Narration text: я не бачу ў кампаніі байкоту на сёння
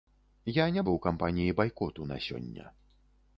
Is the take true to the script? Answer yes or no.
no